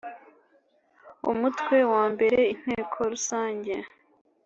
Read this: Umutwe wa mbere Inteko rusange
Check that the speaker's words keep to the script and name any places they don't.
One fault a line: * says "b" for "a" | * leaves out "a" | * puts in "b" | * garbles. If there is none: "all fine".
all fine